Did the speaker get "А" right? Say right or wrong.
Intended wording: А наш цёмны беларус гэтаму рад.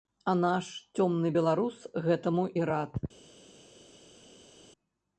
right